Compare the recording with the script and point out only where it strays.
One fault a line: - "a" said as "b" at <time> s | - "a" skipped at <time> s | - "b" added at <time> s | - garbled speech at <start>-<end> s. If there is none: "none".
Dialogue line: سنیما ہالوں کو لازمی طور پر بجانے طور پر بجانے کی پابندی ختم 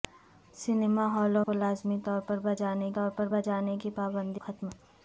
none